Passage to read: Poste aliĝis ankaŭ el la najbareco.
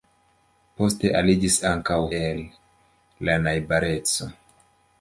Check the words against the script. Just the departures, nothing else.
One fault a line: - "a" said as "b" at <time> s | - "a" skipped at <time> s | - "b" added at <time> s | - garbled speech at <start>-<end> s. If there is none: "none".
none